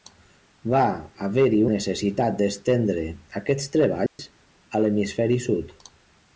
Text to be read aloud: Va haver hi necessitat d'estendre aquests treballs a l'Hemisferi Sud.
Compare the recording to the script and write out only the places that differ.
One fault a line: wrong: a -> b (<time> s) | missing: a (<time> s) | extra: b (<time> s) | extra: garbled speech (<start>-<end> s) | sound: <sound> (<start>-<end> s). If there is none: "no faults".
sound: dropout (4.1-4.2 s)